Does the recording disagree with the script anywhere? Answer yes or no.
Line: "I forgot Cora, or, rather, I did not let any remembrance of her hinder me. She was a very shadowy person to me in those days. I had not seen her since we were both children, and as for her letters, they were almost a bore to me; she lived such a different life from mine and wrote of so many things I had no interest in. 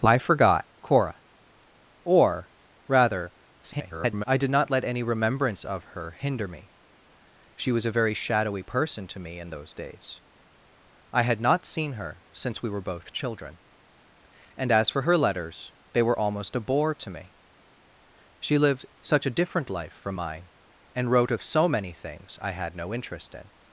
yes